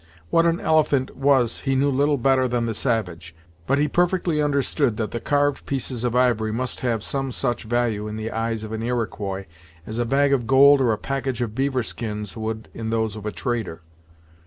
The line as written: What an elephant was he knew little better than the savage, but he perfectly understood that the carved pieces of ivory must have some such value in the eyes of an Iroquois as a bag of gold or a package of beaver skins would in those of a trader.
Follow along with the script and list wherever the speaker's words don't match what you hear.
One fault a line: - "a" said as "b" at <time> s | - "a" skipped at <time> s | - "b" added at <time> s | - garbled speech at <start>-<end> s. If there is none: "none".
none